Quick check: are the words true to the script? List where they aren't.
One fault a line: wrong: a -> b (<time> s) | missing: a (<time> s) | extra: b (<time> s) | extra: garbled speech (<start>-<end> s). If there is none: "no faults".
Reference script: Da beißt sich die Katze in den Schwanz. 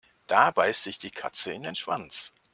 no faults